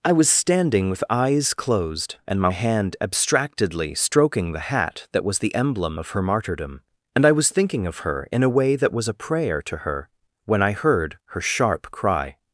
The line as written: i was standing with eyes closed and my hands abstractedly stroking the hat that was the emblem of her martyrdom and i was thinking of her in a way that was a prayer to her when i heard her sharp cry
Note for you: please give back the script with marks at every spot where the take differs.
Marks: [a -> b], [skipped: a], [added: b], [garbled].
i was standing with eyes closed and my [hands -> hand] abstractedly stroking the hat that was the emblem of her martyrdom and i was thinking of her in a way that was a prayer to her when i heard her sharp cry